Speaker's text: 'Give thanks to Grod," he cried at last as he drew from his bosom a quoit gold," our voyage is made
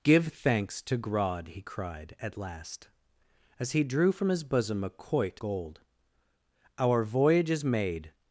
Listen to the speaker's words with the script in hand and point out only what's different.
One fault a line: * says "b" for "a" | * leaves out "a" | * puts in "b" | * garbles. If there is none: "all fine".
all fine